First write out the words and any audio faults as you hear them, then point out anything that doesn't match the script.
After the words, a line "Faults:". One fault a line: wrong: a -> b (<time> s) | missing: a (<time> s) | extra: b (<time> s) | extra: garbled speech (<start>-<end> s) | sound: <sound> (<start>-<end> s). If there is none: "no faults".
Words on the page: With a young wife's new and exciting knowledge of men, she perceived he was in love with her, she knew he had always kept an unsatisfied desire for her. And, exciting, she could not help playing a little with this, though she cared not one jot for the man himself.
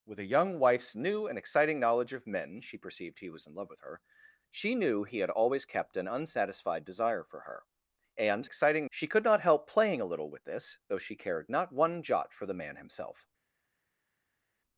With a young wife's new and exciting knowledge of men, she perceived he was in love with her, she knew he had always kept an unsatisfied desire for her. And, exciting, she could not help playing a little with this, though she cared not one jot for the man himself.
Faults:
no faults